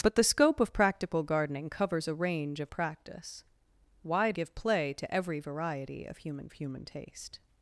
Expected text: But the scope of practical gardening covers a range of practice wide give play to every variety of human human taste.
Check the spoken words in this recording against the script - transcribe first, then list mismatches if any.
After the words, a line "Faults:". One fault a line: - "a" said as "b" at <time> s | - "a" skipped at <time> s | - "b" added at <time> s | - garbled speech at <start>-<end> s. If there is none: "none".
But the scope of practical gardening covers a range of practice wide give play to every variety of human human taste.
Faults:
none